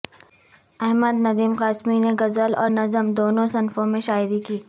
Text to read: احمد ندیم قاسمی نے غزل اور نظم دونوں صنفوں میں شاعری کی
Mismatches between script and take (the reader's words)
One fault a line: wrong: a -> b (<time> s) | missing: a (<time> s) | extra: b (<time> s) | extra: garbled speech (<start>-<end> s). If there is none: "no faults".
no faults